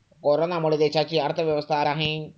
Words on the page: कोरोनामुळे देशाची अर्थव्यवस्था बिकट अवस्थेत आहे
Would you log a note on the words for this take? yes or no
yes